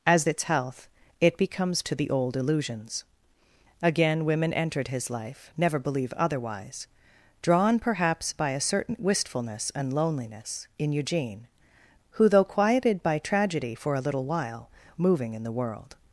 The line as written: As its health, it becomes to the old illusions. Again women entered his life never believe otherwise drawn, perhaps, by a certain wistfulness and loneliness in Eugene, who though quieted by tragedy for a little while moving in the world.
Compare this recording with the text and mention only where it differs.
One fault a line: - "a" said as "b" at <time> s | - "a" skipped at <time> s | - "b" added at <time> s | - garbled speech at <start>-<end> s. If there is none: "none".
none